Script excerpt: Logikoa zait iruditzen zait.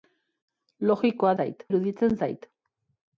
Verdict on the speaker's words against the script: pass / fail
pass